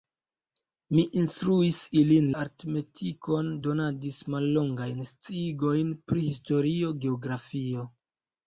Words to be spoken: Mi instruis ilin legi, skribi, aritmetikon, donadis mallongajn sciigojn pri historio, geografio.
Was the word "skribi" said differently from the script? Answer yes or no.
yes